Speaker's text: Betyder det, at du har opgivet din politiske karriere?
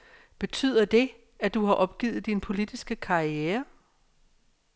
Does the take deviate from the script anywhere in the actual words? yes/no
no